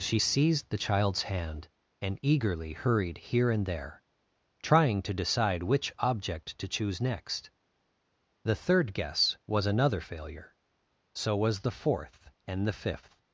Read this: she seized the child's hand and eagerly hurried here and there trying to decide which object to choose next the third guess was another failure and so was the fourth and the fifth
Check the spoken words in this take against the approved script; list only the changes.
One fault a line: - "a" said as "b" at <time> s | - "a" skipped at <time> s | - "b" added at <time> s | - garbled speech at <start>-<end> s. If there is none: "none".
- "and" skipped at 10.5 s